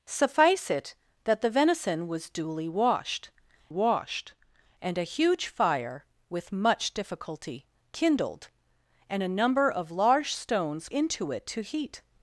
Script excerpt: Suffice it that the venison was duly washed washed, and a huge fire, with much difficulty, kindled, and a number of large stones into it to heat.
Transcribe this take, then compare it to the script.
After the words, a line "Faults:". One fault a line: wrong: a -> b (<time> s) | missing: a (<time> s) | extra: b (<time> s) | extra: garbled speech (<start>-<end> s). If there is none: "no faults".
Suffice it that the venison was duly washed washed, and a huge fire, with much difficulty, kindled, and a number of large stones into it to heat.
Faults:
no faults